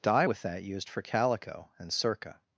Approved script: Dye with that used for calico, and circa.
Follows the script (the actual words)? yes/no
yes